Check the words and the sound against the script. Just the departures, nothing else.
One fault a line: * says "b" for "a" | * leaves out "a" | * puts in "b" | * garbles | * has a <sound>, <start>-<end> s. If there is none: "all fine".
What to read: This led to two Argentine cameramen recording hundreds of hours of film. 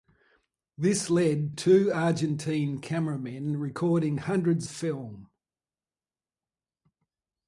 * leaves out "to"
* leaves out "of hours of"